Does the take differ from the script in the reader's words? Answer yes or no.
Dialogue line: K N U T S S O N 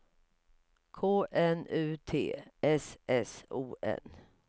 no